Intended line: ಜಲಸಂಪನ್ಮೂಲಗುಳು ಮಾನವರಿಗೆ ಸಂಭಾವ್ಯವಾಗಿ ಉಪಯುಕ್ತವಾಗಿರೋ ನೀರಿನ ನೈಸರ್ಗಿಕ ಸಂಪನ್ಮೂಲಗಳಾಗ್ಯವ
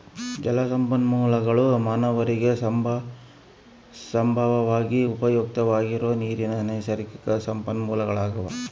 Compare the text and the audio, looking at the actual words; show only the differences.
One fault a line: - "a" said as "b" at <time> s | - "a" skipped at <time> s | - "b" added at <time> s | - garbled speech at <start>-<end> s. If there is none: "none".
none